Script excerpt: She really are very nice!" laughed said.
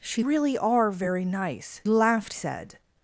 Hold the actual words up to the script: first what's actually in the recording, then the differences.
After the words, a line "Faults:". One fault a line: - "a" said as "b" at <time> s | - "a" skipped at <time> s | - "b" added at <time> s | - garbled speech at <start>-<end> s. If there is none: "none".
She really are very nice!" laughed said.
Faults:
none